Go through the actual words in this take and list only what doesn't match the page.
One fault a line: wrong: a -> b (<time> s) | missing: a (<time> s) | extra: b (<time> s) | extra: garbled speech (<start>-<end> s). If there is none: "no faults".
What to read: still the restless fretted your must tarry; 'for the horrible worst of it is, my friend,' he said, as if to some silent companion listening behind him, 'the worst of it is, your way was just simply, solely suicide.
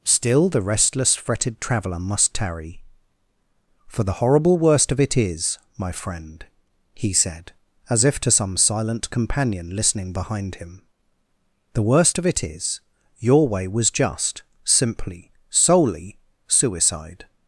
wrong: your -> traveller (1.6 s)